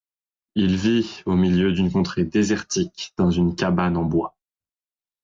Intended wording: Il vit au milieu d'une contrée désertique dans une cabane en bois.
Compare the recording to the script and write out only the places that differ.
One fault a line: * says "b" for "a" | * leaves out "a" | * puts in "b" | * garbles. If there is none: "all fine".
all fine